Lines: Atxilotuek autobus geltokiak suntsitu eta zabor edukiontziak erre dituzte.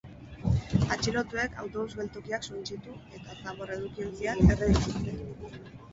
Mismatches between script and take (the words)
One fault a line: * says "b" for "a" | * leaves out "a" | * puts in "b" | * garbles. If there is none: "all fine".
all fine